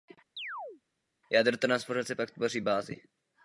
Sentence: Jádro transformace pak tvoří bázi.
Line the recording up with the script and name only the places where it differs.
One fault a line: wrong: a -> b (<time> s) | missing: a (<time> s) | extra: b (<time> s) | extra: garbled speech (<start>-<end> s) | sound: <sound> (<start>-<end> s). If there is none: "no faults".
sound: chirp (0.4-0.8 s)